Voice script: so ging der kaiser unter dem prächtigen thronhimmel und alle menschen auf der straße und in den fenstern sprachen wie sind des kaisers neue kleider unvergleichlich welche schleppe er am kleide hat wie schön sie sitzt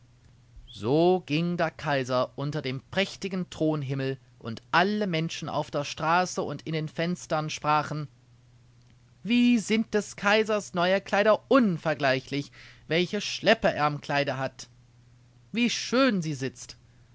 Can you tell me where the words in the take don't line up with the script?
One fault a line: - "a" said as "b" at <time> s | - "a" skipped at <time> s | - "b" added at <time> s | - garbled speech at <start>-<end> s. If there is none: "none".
none